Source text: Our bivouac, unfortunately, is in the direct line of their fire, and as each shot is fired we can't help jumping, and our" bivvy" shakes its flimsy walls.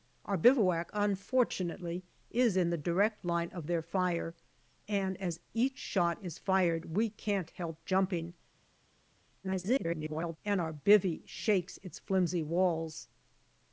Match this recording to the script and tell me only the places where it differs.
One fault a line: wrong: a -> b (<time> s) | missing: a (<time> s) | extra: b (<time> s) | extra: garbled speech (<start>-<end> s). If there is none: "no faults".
extra: garbled speech (9.4-10.4 s)